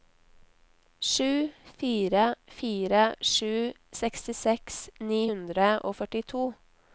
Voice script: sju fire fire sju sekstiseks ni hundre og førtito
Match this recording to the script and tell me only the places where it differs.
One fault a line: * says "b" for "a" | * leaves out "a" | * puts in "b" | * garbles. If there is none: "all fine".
all fine